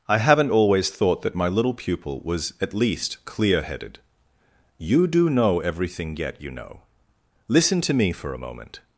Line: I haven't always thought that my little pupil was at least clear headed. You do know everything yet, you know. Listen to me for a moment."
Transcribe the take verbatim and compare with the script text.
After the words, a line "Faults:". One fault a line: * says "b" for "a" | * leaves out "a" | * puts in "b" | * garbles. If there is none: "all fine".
I haven't always thought that my little pupil was at least clear headed. You do know everything yet, you know. Listen to me for a moment."
Faults:
all fine